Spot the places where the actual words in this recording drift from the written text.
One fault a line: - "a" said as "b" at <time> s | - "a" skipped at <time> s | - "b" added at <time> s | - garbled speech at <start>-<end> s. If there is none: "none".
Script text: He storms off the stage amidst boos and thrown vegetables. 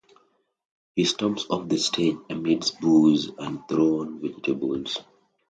none